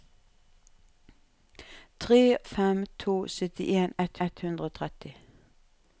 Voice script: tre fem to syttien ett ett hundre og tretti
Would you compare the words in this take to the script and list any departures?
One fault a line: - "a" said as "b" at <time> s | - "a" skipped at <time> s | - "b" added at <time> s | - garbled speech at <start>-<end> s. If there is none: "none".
none